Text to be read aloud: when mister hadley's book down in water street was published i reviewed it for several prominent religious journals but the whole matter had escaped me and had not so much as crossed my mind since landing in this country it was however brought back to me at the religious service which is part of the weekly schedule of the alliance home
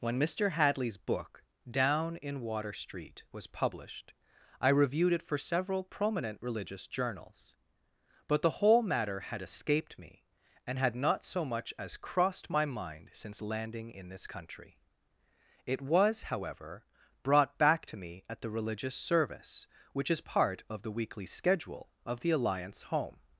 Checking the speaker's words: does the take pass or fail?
pass